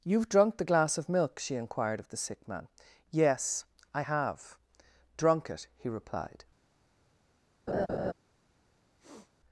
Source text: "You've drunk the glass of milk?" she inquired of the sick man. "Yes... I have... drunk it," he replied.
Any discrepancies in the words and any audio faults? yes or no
yes